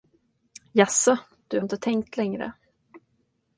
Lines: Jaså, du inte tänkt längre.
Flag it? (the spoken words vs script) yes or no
no